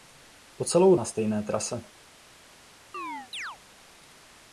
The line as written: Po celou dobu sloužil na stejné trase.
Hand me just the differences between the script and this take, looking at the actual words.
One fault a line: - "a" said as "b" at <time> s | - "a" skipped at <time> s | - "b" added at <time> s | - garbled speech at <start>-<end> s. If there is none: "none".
- "dobu sloužil" skipped at 0.9 s